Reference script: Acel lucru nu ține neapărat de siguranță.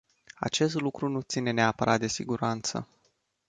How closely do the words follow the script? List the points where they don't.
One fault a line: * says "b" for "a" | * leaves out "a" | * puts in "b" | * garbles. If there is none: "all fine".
* says "Acest" for "Acel"